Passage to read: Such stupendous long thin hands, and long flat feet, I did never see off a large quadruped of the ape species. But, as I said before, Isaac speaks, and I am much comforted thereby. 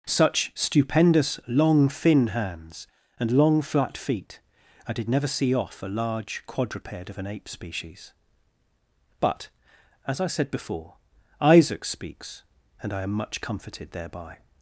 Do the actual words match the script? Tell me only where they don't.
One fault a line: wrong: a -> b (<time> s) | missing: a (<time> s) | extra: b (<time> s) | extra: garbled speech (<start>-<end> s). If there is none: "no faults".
wrong: the -> an (7.2 s)